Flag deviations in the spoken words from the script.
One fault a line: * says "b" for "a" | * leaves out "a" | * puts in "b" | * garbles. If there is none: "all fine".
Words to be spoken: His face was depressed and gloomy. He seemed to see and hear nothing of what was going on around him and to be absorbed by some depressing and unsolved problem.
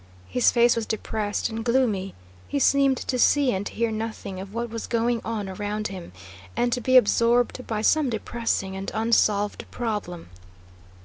all fine